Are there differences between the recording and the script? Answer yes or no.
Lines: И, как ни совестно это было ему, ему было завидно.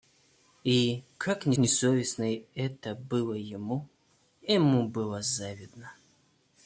yes